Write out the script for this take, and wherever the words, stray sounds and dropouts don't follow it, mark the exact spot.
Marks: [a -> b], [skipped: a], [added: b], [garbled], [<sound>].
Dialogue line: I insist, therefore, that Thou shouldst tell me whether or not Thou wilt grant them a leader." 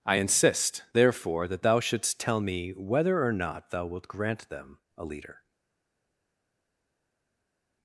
I insist, therefore, that Thou shouldst tell me whether or not Thou wilt grant them a leader."